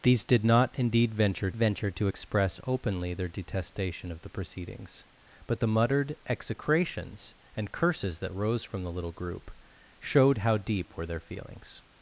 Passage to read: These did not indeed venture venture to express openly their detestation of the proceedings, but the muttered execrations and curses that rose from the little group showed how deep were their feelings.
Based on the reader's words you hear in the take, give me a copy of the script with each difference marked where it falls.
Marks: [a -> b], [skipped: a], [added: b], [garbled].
These did not indeed venture venture to express openly their detestation of the proceedings, but the muttered execrations and curses that rose from the little group showed how deep were their feelings.